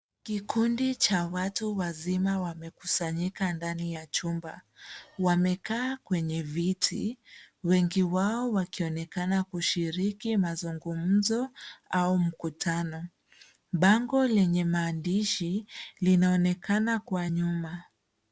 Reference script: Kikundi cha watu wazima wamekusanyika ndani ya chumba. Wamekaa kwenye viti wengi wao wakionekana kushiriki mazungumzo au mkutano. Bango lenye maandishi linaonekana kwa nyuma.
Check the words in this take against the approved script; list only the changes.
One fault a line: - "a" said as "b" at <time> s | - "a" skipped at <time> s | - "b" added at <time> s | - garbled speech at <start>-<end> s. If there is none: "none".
none